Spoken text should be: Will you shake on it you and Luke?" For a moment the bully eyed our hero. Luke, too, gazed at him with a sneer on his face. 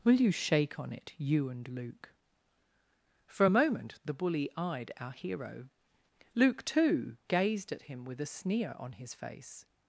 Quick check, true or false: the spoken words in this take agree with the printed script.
true